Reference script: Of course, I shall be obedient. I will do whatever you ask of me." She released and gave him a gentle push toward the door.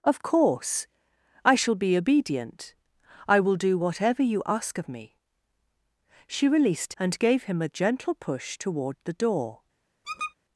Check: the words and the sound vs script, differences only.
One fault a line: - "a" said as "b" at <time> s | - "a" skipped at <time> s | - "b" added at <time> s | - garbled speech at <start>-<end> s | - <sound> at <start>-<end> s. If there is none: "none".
- squeak at 10.0-10.3 s